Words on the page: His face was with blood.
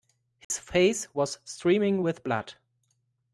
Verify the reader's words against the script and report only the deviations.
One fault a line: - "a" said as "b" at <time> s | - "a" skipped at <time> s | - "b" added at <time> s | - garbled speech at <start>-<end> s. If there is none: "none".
- "streaming" added at 1.4 s